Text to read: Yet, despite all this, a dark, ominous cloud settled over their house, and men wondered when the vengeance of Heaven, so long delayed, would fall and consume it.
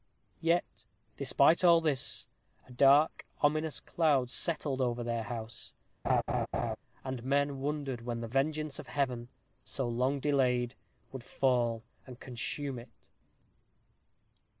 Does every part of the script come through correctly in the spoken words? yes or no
yes